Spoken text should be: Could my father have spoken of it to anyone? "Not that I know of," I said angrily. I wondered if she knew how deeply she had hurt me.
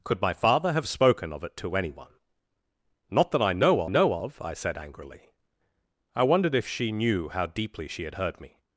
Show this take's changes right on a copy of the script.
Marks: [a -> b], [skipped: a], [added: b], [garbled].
Could my father have spoken of it to anyone? "Not that I know [added: know] of," I said angrily. I wondered if she knew how deeply she had hurt me.